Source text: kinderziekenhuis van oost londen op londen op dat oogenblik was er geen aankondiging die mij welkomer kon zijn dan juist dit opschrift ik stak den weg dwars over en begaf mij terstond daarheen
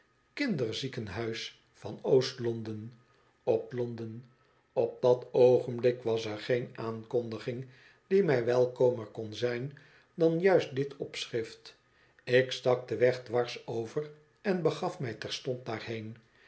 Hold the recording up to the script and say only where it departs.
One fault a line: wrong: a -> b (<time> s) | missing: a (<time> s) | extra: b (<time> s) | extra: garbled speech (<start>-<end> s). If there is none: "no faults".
no faults